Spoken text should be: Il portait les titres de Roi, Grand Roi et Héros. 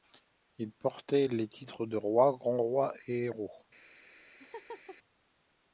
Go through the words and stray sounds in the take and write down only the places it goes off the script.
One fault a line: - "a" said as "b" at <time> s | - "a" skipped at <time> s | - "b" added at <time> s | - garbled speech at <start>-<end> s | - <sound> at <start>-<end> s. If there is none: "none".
- laugh at 4.4-5.0 s